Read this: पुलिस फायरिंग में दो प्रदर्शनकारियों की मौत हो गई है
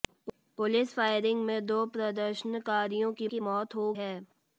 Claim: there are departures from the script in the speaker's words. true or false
true